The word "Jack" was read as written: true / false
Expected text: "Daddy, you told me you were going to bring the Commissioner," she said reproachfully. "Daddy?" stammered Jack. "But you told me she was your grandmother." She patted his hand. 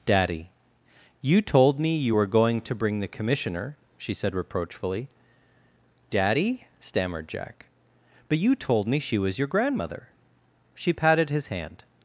true